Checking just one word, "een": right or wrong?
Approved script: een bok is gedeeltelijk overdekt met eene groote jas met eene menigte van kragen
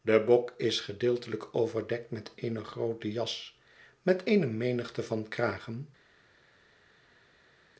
wrong